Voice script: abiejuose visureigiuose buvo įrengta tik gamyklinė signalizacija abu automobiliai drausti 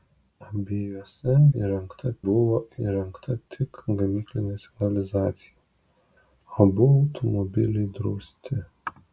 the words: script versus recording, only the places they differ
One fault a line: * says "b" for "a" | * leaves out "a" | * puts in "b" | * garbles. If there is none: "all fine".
* says "įrengta" for "visureigiuose"